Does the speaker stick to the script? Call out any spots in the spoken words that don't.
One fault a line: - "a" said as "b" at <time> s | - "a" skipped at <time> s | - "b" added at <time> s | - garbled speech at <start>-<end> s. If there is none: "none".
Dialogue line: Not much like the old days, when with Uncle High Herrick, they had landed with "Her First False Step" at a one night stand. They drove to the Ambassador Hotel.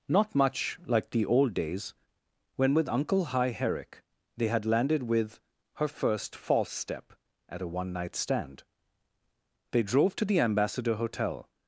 none